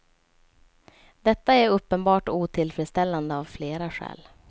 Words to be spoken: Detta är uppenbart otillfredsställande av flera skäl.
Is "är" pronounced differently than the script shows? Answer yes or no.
no